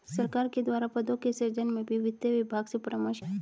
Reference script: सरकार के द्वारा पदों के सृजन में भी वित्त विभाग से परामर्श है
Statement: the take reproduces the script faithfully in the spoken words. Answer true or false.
true